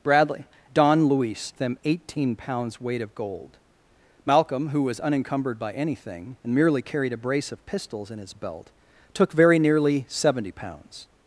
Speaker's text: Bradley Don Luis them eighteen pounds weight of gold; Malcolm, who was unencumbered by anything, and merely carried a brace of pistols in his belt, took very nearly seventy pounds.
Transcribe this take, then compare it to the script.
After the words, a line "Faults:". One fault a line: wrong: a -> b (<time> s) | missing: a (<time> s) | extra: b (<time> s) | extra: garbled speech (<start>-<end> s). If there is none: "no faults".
Bradley Don Luis them eighteen pounds weight of gold; Malcolm, who was unencumbered by anything, and merely carried a brace of pistols in his belt, took very nearly seventy pounds.
Faults:
no faults